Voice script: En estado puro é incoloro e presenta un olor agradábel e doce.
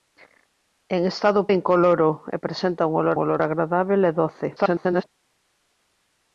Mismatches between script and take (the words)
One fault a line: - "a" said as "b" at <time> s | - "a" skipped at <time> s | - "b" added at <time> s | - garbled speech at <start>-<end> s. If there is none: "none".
- "puro" skipped at 1.4 s
- "olor" added at 3.2 s
- garbled speech at 4.6-5.0 s